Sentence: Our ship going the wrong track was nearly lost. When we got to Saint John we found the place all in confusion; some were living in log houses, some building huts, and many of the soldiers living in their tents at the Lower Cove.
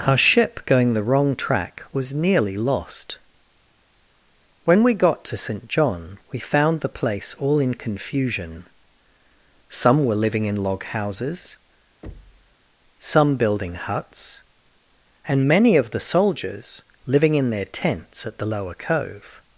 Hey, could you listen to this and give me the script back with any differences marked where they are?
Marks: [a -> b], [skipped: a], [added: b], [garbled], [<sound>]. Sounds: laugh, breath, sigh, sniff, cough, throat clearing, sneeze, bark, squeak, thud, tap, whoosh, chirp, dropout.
Our ship going the wrong track was nearly lost. When we got to Saint John we found the place all in confusion; some were living in log houses, [thud] some building huts, and many of the soldiers living in their tents at the Lower Cove.